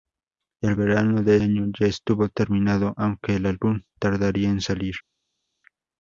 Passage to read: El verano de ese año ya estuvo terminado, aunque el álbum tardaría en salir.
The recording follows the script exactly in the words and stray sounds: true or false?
false